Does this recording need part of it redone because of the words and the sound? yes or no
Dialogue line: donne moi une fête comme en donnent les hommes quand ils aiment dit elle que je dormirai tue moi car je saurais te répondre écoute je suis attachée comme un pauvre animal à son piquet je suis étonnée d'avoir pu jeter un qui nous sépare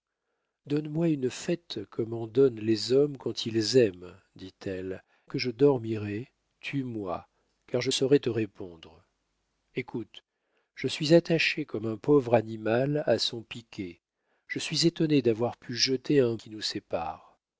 no